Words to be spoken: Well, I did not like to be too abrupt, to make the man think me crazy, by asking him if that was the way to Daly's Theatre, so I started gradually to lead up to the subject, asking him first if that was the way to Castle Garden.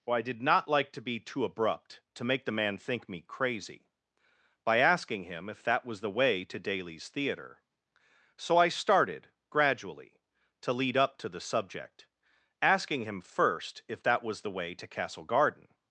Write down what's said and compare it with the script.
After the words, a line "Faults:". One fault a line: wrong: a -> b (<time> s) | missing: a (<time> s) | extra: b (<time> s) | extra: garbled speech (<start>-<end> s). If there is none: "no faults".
Well, I did not like to be too abrupt, to make the man think me crazy, by asking him if that was the way to Daly's Theatre, so I started gradually to lead up to the subject, asking him first if that was the way to Castle Garden.
Faults:
no faults